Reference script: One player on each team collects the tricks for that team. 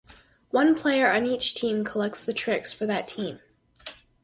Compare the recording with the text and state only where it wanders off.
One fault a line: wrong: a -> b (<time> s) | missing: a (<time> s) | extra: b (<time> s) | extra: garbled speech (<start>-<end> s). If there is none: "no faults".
no faults